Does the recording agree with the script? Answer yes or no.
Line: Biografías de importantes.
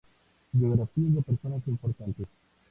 no